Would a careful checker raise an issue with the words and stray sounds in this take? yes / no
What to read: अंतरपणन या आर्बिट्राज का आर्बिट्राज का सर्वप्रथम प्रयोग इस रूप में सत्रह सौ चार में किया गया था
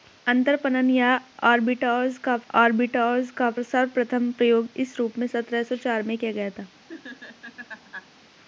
yes